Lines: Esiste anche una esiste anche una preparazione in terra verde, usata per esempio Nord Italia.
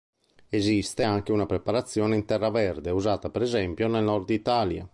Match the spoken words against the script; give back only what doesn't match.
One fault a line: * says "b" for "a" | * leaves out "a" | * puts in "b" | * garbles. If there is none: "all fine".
* leaves out "esiste anche una"
* puts in "nel"